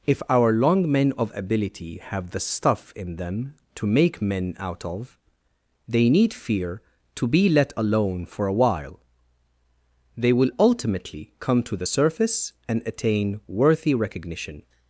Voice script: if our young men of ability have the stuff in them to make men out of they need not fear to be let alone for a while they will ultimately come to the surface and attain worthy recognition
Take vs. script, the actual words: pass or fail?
fail